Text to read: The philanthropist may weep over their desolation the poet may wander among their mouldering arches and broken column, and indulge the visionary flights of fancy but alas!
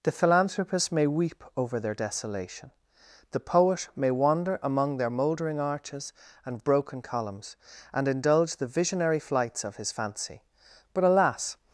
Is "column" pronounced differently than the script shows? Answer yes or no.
yes